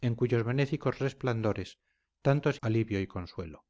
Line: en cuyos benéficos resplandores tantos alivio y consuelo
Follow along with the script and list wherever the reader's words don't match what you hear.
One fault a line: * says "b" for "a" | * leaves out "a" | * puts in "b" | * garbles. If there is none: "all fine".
all fine